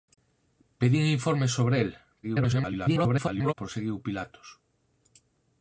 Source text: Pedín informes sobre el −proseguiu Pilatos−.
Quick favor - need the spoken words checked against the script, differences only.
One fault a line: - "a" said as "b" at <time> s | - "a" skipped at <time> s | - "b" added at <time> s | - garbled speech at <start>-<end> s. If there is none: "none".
- garbled speech at 2.2-3.5 s